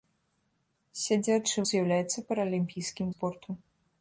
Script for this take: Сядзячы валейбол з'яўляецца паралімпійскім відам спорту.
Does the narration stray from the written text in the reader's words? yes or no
yes